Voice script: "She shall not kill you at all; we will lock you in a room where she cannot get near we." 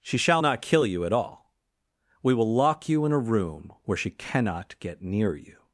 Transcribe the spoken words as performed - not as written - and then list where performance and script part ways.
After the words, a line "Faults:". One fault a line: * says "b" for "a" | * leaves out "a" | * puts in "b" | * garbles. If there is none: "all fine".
"She shall not kill you at all; we will lock you in a room where she cannot get near you."
Faults:
* says "you" for "we"